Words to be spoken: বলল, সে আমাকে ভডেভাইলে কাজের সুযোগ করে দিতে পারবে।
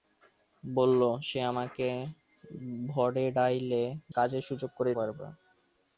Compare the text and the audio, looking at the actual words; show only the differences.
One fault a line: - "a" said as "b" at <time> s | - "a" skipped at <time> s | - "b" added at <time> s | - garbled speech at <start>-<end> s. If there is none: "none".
- "ভডেভাইলে" skipped at 1.9 s
- "দিতে" skipped at 4.9 s